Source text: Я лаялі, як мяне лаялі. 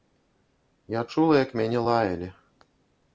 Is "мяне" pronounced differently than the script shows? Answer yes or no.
no